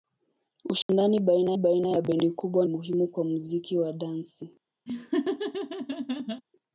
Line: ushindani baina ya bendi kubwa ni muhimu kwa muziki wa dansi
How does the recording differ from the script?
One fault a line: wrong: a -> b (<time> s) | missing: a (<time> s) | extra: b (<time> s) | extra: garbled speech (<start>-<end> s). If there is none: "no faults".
extra: baina (1.6 s)
missing: ni (2.7 s)